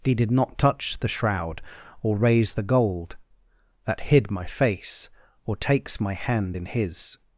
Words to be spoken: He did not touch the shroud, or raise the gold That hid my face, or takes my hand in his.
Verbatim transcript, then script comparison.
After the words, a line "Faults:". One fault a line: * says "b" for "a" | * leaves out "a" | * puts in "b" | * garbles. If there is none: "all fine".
He did not touch the shroud, or raise the gold That hid my face, or takes my hand in his.
Faults:
all fine